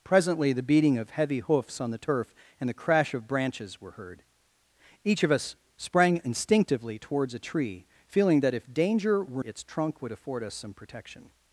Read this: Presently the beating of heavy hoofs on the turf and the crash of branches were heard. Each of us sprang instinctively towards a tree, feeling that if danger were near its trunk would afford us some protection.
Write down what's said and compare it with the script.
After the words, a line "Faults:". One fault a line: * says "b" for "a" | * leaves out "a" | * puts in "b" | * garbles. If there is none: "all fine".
Presently the beating of heavy hoofs on the turf and the crash of branches were heard. Each of us sprang instinctively towards a tree, feeling that if danger were its trunk would afford us some protection.
Faults:
* leaves out "near"